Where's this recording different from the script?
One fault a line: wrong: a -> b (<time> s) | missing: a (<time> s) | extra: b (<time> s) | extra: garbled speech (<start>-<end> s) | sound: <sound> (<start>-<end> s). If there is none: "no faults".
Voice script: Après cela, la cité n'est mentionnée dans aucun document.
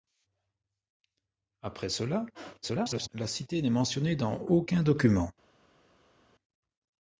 extra: garbled speech (2.6-3.1 s)